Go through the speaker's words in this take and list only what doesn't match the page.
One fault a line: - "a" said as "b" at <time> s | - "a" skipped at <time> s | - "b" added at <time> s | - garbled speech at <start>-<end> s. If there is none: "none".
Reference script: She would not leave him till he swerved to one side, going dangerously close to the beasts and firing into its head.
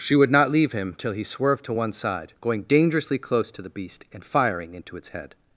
- "beasts" said as "beast" at 3.7 s